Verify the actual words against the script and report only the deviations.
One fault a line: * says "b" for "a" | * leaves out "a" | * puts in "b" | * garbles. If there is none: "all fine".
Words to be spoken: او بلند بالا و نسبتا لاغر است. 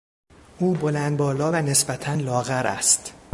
all fine